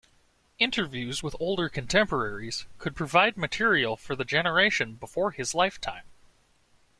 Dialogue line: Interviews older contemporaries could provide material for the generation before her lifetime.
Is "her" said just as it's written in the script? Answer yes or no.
no